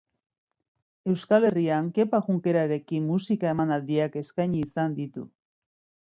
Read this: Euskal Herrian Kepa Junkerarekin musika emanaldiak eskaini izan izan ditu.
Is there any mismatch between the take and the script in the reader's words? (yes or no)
yes